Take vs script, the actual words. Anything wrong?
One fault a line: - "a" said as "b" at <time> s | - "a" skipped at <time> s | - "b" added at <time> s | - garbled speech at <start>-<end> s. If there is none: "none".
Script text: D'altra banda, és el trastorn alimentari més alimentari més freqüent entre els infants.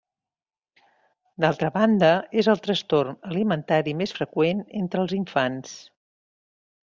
- "alimentari més" skipped at 4.2 s